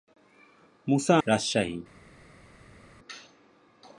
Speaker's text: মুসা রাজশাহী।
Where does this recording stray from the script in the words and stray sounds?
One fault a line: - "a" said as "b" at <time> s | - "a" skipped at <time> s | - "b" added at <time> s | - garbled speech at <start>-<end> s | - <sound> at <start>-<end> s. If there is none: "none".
none